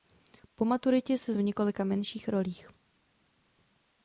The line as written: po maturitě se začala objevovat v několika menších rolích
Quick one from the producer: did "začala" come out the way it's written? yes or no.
no